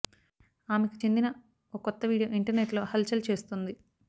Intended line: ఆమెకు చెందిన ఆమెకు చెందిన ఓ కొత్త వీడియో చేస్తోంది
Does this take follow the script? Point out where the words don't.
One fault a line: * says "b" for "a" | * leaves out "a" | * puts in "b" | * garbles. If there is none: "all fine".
* leaves out "ఆమెకు చెందిన"
* puts in "ఇంటర్నెట్లో హల్ చల్"